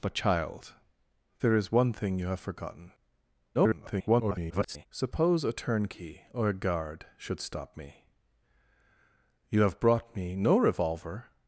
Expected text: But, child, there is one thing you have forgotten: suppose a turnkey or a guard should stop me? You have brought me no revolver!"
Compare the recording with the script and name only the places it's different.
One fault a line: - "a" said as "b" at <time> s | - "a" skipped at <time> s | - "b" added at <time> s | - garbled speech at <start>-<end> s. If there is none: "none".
- garbled speech at 3.5-4.9 s